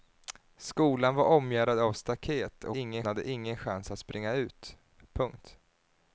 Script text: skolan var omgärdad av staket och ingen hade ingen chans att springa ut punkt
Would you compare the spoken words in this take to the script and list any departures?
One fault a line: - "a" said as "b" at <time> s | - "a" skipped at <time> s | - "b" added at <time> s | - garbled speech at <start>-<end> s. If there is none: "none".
none